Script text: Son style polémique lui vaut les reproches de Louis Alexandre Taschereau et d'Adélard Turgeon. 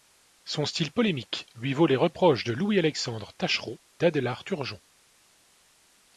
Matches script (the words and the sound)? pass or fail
fail